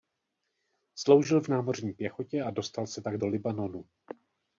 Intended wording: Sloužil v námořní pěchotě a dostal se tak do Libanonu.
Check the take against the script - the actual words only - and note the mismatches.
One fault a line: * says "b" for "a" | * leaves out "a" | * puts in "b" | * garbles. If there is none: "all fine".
all fine